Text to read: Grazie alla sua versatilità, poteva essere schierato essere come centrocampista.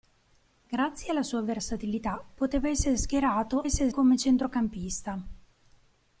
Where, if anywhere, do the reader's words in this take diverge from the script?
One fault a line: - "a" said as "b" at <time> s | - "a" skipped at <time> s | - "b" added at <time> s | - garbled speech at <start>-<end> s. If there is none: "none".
none